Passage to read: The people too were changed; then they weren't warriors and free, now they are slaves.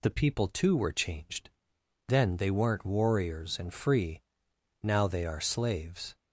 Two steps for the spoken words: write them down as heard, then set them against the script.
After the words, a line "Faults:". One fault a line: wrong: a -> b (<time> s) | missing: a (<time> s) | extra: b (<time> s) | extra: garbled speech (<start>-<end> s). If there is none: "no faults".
The people too were changed; then they weren't warriors and free, now they are slaves.
Faults:
no faults